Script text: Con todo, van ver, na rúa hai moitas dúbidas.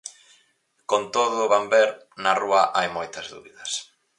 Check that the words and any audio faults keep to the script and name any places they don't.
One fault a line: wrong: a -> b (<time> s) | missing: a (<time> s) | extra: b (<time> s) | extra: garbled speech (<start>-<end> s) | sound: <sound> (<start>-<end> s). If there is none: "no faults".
no faults